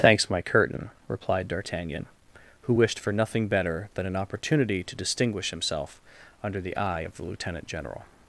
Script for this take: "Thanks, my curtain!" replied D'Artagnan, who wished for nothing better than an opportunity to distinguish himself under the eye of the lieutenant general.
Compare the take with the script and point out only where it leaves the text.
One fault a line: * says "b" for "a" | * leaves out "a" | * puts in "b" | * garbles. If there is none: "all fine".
all fine